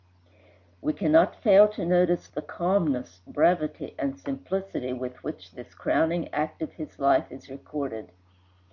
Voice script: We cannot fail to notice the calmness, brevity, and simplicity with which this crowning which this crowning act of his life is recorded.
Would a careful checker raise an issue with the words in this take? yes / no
yes